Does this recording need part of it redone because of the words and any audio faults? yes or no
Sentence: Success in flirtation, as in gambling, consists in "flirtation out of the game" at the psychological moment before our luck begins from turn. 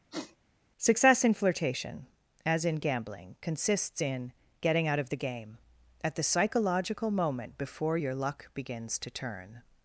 yes